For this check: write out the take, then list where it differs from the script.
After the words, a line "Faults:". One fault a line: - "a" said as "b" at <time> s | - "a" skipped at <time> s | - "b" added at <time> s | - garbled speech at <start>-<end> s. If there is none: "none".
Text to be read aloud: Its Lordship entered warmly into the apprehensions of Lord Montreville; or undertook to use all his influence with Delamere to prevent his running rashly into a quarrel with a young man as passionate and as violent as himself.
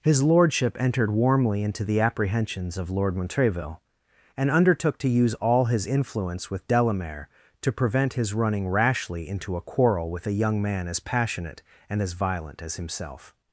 His Lordship entered warmly into the apprehensions of Lord Montreville; and undertook to use all his influence with Delamere to prevent his running rashly into a quarrel with a young man as passionate and as violent as himself.
Faults:
- "Its" said as "His" at 0.0 s
- "or" said as "and" at 4.3 s